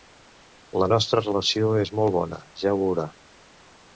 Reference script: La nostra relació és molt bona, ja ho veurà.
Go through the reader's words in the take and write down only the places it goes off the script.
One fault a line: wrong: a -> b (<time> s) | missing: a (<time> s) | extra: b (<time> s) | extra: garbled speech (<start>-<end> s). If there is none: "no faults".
no faults